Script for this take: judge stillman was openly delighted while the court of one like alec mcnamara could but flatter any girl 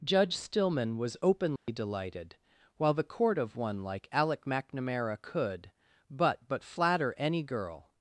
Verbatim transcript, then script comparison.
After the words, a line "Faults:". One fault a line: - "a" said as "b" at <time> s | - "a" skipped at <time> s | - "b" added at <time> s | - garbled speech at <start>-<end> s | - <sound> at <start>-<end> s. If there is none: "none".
judge stillman was openly delighted while the court of one like alec mcnamara could but but flatter any girl
Faults:
- dropout at 1.6-1.7 s
- "but" added at 6.5 s